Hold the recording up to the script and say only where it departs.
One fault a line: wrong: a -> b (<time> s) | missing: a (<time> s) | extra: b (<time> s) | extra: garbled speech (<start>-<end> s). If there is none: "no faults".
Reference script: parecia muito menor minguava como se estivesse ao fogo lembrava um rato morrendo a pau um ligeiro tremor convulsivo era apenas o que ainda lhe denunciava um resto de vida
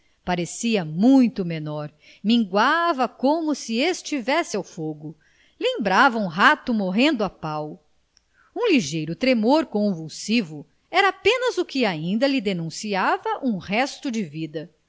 no faults